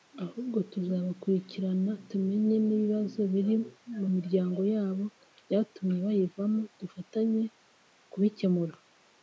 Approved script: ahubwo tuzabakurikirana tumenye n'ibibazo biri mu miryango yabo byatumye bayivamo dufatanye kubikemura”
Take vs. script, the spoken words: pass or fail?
pass